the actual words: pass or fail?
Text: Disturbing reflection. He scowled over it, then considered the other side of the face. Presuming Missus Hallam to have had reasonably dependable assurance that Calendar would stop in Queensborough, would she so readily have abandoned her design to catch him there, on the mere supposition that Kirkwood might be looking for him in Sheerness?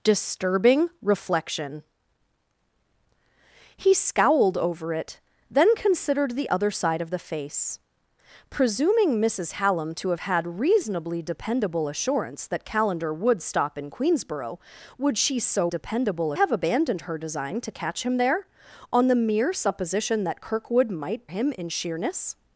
fail